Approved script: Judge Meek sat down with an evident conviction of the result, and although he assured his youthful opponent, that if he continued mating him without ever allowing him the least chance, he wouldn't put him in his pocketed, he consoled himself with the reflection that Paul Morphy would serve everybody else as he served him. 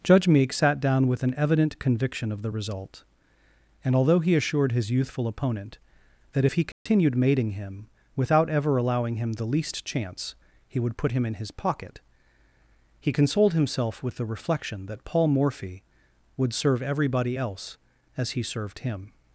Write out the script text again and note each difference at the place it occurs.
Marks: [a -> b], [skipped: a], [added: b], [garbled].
Judge Meek sat down with an evident conviction of the result, and although he assured his youthful opponent, that if he continued mating him without ever allowing him the least chance, he [wouldn't -> would] put him in his [pocketed, -> pocket] he consoled himself with the reflection that Paul Morphy would serve everybody else as he served him.